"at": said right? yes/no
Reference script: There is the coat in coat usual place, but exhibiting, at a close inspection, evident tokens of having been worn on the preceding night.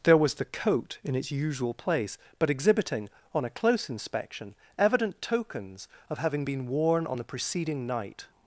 no